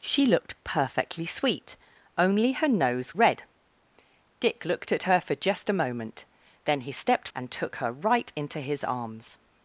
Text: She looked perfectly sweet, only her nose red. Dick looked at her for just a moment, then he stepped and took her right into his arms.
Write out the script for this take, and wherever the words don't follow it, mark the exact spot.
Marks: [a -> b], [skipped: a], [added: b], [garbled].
She looked perfectly sweet, only her nose red. Dick looked at her for just a moment, then he stepped and took her right into his arms.